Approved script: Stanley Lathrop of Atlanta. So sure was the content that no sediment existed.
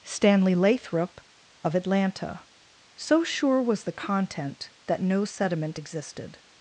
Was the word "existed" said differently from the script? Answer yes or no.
no